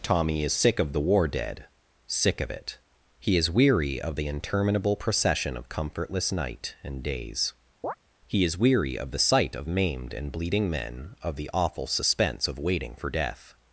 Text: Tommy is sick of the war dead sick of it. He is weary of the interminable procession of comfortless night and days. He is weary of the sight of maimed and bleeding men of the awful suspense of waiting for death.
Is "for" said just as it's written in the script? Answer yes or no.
yes